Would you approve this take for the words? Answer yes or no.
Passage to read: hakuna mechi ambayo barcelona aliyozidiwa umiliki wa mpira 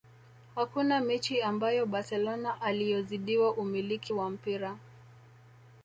yes